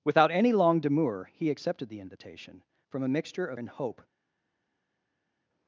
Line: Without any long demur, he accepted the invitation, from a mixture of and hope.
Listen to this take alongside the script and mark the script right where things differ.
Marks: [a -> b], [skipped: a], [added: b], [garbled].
Without any long demur, he accepted the invitation, from a mixture of and hope.